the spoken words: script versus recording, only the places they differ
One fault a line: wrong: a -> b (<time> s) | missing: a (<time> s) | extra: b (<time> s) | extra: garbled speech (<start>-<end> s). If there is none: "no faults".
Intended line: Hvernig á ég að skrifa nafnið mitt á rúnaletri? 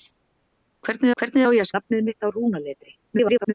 extra: hvernig (1.2 s)
missing: skrifa (1.7 s)
extra: garbled speech (3.0-3.5 s)